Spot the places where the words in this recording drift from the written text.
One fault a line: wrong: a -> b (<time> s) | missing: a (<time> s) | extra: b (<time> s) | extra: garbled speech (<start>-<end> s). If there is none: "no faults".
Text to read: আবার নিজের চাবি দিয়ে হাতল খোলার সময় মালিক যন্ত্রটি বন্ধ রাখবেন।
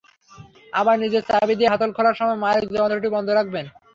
no faults